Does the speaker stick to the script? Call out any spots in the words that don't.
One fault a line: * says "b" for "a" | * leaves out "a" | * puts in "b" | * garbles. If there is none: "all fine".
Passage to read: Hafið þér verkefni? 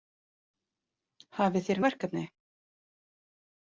all fine